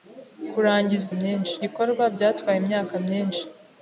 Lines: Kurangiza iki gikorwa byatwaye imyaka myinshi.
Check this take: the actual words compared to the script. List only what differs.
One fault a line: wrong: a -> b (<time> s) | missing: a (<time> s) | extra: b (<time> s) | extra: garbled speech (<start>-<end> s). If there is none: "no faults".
wrong: iki -> myinshi (1.2 s)